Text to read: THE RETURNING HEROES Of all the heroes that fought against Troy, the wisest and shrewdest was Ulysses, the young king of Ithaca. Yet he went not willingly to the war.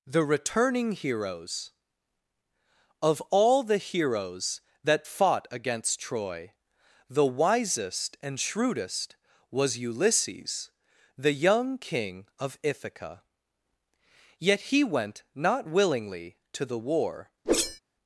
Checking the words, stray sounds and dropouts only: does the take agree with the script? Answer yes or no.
no